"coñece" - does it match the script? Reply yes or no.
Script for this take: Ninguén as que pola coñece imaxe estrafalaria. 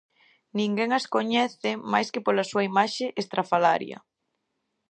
no